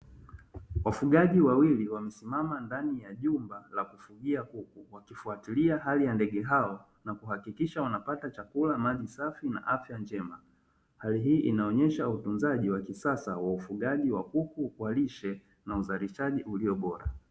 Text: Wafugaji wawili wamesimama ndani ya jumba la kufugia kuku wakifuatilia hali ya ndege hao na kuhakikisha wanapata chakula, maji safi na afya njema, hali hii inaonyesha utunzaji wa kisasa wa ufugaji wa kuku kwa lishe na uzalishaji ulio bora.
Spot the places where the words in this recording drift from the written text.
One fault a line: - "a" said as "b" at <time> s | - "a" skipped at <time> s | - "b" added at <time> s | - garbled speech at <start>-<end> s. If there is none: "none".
none